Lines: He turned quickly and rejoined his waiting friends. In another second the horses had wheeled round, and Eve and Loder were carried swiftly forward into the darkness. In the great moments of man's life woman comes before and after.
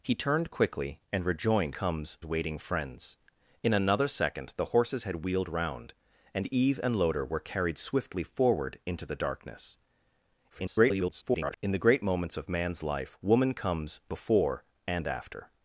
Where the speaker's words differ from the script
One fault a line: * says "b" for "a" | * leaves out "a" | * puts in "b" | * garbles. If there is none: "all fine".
* says "comes" for "his"
* garbles